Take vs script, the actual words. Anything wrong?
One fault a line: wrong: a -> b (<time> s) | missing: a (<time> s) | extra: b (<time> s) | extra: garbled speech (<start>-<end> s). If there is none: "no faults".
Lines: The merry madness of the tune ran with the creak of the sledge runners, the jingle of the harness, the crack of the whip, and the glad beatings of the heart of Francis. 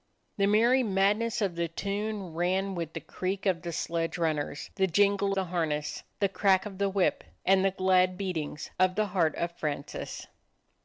missing: of (5.4 s)